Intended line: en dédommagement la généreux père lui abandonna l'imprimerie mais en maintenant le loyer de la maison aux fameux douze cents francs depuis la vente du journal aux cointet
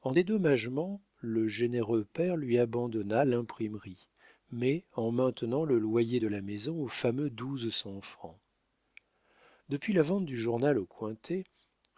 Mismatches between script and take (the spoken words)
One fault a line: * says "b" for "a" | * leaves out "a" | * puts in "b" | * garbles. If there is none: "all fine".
* says "le" for "la"